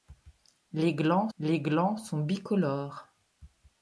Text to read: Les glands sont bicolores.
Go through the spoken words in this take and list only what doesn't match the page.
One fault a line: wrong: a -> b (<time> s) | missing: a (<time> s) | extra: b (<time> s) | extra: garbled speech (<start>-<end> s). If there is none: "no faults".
extra: les glands (1.4 s)